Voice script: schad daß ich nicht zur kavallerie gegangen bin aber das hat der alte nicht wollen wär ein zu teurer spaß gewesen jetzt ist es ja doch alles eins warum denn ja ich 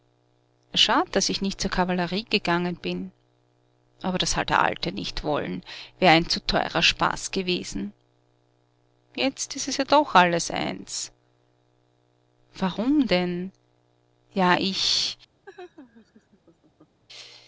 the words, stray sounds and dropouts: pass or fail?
fail